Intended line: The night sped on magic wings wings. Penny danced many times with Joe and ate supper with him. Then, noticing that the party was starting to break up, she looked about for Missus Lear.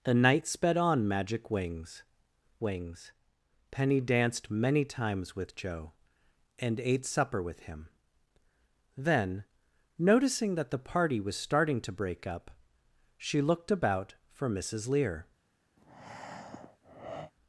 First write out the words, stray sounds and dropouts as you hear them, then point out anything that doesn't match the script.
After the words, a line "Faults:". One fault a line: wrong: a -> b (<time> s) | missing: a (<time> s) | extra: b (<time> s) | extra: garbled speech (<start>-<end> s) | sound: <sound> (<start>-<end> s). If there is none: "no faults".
The night sped on magic wings wings. Penny danced many times with Joe and ate supper with him. Then, noticing that the party was starting to break up, she looked about for Missus Lear.
Faults:
sound: breath (15.8-17.3 s)